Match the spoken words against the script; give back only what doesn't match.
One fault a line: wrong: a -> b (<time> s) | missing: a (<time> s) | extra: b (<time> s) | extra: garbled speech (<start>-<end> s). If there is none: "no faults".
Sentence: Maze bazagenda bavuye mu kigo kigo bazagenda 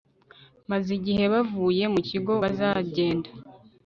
wrong: bazagenda -> igihe (1.0 s)
missing: kigo (2.3 s)